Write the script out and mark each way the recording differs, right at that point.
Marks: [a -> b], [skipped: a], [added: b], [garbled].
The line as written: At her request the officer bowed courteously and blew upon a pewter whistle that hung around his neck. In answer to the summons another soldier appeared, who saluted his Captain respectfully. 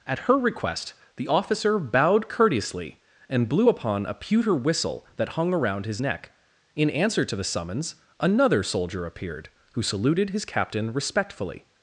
At her request the officer bowed courteously and blew upon a pewter whistle that hung around his neck. In answer to the summons another soldier appeared, who saluted his Captain respectfully.